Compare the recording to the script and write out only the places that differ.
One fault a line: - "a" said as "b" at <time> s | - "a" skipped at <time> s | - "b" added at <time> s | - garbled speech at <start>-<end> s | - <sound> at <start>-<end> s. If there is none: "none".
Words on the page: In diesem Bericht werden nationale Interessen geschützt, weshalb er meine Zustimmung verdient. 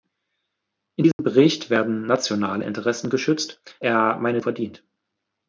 - dropout at 1.1-1.2 s
- "weshalb" skipped at 3.6 s
- "Zustimmung" skipped at 4.4 s